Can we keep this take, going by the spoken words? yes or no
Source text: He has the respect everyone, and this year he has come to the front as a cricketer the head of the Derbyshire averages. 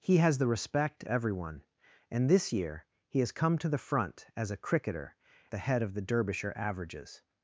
yes